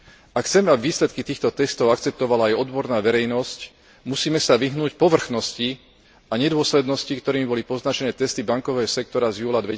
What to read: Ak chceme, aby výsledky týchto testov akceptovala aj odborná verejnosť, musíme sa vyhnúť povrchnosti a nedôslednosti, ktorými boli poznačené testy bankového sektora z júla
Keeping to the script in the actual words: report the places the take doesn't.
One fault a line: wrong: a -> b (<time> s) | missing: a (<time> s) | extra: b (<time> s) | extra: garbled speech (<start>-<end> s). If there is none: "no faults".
no faults